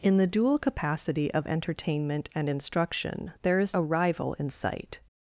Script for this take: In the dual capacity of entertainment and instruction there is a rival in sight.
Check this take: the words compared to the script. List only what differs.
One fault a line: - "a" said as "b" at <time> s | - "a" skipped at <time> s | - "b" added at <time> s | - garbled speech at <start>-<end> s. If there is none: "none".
none